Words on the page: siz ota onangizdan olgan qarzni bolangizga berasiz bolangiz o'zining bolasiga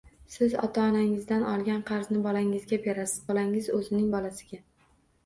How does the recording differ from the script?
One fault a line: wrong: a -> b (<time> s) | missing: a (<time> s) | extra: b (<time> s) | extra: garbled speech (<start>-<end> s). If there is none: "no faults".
no faults